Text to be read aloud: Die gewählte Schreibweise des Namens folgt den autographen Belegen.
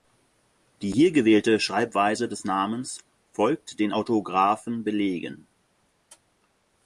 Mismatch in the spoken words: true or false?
true